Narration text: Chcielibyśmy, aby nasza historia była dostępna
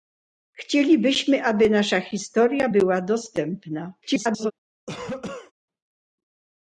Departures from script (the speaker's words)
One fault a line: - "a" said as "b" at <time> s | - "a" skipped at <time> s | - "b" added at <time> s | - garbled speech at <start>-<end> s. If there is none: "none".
- garbled speech at 4.0-4.5 s